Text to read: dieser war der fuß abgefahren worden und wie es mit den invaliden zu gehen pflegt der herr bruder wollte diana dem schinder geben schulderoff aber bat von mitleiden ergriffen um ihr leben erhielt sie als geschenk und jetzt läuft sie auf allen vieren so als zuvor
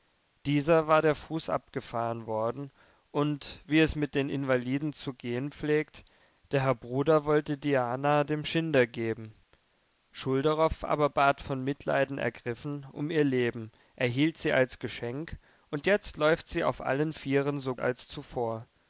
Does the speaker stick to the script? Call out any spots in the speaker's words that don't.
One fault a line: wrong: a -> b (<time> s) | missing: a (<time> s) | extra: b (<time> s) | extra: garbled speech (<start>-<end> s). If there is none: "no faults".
no faults